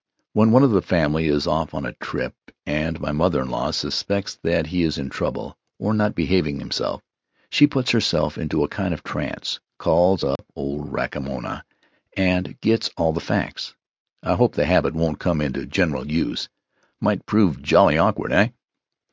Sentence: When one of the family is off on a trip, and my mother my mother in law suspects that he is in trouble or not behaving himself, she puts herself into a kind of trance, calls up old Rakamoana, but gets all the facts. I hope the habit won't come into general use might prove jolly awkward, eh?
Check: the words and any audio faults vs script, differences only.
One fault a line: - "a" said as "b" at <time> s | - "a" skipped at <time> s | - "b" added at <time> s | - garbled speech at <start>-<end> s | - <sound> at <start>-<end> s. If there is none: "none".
- "my mother" skipped at 3.4 s
- dropout at 10.4-10.4 s
- "but" said as "and" at 12.1 s